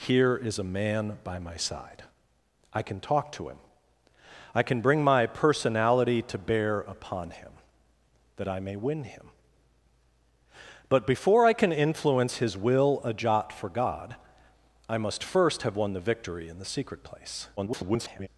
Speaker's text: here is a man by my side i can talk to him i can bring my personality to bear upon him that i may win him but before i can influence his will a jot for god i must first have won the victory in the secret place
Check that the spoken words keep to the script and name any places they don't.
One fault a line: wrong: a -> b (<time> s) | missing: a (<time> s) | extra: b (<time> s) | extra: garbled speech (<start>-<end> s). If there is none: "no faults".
extra: garbled speech (17.6-18.3 s)